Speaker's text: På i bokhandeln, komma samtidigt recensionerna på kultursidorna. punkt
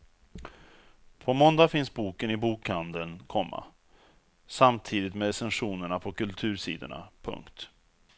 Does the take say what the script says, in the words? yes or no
no